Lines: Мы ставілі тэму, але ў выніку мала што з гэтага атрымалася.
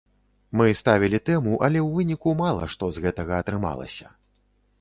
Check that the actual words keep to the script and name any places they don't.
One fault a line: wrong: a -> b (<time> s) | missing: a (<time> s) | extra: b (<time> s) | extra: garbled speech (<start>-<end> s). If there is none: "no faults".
no faults